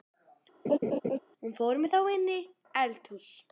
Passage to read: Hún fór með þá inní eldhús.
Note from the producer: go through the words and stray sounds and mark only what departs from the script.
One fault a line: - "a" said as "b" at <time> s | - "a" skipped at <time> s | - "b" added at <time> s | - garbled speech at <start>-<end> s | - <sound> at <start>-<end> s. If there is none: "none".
- laugh at 0.6-1.2 s